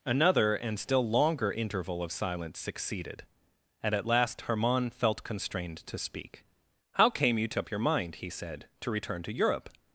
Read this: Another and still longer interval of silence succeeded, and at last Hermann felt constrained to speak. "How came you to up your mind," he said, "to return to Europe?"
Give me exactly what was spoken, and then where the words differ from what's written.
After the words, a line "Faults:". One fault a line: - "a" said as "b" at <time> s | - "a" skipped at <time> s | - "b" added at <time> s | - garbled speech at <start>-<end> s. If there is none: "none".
Another and still longer interval of silence succeeded, and at last Hermann felt constrained to speak. "How came you to up your mind," he said, "to return to Europe?"
Faults:
none